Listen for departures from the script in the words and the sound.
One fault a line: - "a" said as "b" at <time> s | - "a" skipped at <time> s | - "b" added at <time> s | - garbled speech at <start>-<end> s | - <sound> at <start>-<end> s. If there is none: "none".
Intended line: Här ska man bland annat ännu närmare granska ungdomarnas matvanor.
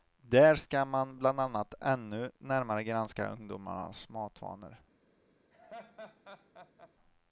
- "Här" said as "Där" at 0.2 s
- laugh at 5.5-6.9 s